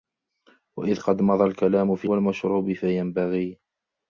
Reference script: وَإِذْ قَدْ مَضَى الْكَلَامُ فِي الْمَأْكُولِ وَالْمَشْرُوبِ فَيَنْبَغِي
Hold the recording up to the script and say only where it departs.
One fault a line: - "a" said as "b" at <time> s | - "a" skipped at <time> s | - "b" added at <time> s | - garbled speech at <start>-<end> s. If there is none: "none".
- "الْمَأْكُولِ" skipped at 2.1 s